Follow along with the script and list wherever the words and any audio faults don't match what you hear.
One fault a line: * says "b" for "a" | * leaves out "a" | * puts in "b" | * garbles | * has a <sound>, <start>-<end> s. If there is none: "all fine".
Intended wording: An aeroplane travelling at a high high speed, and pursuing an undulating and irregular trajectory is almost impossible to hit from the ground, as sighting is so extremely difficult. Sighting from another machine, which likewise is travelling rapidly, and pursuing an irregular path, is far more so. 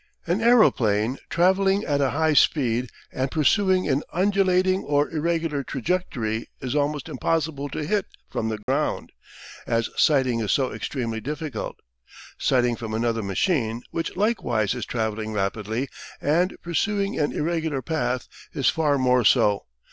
* leaves out "high"
* says "or" for "and"
* has a dropout, 8.6-8.7 s